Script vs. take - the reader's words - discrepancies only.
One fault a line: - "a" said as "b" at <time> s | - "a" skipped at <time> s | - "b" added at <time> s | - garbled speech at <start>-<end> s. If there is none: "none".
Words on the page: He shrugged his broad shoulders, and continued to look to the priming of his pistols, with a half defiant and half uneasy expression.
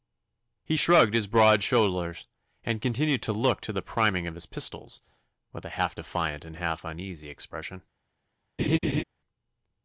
none